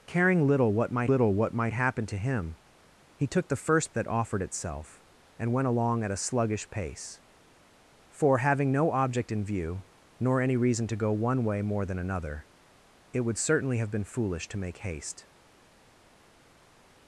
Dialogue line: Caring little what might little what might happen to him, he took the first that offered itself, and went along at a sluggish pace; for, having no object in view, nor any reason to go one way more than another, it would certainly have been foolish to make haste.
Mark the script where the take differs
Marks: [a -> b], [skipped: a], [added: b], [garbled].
Caring little what might little what might happen to him, he took the first that offered itself, and went along at a sluggish pace; for, having no object in view, nor any reason to go one way more than another, it would certainly have been foolish to make haste.